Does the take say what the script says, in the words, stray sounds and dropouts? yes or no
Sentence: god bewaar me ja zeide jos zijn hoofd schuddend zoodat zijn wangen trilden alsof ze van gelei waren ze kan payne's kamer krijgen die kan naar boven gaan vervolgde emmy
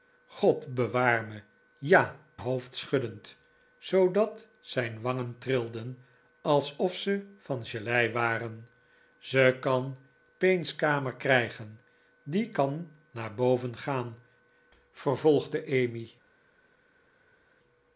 no